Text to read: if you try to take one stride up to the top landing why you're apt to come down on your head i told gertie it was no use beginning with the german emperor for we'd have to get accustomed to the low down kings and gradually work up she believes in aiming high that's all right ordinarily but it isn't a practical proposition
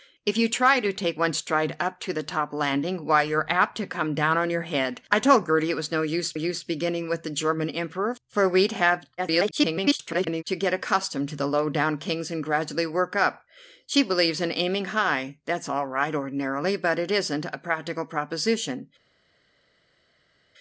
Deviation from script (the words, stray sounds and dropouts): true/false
true